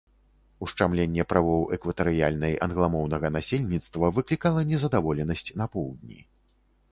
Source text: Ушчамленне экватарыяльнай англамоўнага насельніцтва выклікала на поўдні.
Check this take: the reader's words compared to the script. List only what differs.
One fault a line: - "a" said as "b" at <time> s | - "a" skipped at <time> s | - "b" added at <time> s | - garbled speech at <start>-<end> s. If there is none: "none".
- "правоў" added at 1.3 s
- "незадаволенасць" added at 4.7 s